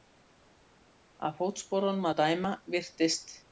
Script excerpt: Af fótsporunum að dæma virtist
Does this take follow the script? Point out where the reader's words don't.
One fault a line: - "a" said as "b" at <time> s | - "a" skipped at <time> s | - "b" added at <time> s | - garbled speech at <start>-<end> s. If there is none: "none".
none